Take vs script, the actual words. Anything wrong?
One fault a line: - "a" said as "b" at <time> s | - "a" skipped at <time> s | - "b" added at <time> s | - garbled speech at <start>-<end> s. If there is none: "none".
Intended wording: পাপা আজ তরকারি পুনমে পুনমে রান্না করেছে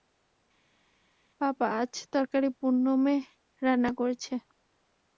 - "পুনমে" skipped at 3.1 s